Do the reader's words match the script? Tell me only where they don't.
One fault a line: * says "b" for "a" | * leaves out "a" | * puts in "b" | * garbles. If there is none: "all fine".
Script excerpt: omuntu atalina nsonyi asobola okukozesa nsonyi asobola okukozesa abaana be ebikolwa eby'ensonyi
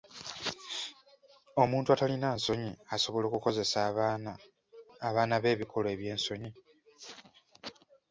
* leaves out "nsonyi asobola okukozesa"